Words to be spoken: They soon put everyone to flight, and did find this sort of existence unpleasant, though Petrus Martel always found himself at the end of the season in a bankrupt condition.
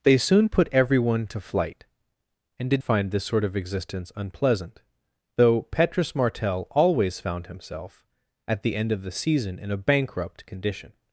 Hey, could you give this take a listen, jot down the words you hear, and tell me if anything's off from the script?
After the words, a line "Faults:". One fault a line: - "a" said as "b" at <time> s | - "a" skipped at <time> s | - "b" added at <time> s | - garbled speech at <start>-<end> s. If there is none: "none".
They soon put everyone to flight, and did find this sort of existence unpleasant, though Petrus Martel always found himself at the end of the season in a bankrupt condition.
Faults:
none